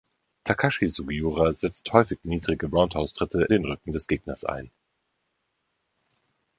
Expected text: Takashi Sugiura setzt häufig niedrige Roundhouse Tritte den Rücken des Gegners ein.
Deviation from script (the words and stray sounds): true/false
false